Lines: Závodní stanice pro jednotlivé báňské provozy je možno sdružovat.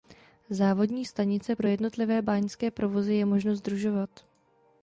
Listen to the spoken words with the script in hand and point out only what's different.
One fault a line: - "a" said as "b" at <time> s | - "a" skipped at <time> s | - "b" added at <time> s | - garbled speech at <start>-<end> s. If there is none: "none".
none